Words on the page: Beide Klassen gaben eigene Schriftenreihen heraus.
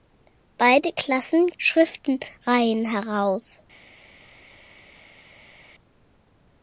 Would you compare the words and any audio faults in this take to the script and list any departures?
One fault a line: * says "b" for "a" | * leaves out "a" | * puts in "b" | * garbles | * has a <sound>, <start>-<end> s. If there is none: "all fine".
* leaves out "gaben eigene"